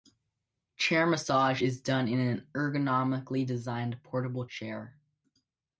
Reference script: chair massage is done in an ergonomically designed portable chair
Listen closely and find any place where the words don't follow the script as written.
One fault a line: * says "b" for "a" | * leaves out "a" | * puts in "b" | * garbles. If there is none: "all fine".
all fine